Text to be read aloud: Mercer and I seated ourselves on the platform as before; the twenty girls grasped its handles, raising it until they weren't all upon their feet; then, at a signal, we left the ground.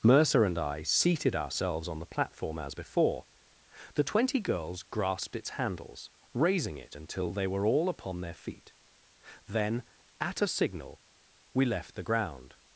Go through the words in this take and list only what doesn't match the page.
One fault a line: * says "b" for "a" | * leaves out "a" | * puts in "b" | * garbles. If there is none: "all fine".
* says "were" for "weren't"